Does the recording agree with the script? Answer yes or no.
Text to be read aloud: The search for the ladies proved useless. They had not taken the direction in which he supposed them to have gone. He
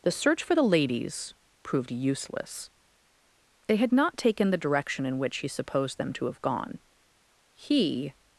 yes